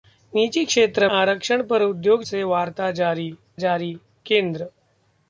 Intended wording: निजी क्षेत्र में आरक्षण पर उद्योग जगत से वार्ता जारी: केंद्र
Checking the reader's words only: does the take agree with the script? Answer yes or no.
no